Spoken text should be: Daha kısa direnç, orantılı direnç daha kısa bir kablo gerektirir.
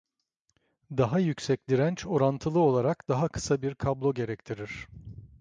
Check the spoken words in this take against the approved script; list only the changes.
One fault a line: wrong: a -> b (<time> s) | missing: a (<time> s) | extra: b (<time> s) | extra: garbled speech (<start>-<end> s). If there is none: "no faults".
wrong: kısa -> yüksek (1.2 s)
wrong: direnç -> olarak (2.6 s)